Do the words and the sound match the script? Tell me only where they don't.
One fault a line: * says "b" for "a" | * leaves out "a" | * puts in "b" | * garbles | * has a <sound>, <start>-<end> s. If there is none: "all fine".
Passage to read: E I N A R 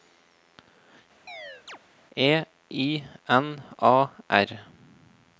* has a chirp, 1.3-1.8 s